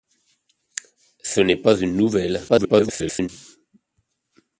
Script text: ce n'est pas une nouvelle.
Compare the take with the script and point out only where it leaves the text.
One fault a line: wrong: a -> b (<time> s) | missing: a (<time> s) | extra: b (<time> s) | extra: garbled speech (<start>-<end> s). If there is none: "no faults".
extra: garbled speech (2.5-3.3 s)